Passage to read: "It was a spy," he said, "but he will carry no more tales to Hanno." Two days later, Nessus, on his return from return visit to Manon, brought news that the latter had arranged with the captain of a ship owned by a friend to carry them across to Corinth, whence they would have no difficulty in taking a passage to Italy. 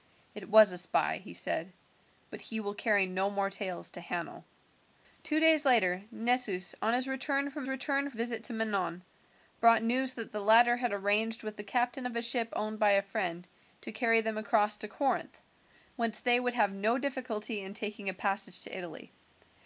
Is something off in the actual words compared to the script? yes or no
no